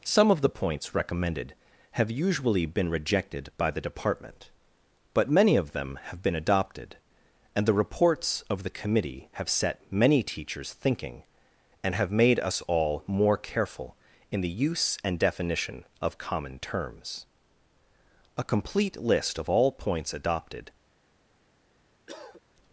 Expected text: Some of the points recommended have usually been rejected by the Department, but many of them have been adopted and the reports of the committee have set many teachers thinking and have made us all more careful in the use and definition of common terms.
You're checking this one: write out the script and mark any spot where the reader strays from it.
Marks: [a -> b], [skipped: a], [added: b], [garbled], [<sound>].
Some of the points recommended have usually been rejected by the Department, but many of them have been adopted and the reports of the committee have set many teachers thinking and have made us all more careful in the use and definition of common terms. [added: A complete list of all points adopted] [cough]